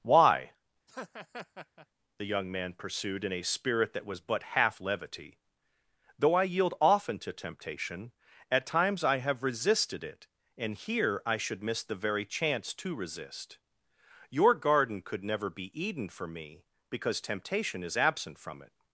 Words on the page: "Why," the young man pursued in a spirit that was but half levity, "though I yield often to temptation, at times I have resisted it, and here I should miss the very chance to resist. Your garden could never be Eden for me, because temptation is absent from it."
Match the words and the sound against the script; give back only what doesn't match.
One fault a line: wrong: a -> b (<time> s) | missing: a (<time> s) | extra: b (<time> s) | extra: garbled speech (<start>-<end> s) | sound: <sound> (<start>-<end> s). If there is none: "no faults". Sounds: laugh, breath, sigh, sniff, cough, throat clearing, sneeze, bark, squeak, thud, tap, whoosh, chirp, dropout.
sound: laugh (0.9-1.9 s)